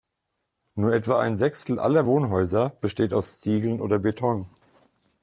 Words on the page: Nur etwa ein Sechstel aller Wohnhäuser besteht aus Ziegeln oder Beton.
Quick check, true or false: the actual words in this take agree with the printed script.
true